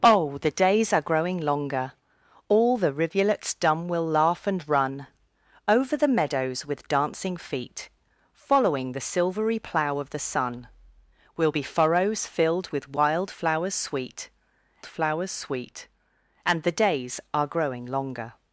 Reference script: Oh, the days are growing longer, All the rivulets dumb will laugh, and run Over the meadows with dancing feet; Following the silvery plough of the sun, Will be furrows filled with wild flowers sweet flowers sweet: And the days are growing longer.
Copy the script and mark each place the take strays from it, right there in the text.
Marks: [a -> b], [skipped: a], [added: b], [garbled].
Oh, the days are growing longer, All the rivulets dumb will laugh, and run Over the meadows with dancing feet; Following the silvery plough of the sun, Will be furrows filled with wild flowers sweet flowers sweet: And the days are growing longer.